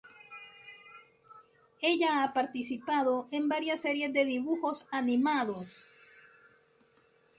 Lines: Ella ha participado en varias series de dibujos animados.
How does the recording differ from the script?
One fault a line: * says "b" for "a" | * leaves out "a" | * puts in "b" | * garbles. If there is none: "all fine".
all fine